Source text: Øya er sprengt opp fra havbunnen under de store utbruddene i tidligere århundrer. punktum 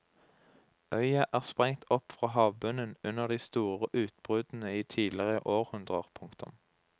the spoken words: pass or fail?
pass